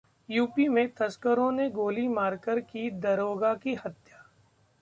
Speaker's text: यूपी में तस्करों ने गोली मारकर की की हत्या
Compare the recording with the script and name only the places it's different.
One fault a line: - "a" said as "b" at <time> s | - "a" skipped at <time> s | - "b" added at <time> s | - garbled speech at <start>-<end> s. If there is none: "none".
- "दारोगा" added at 2.9 s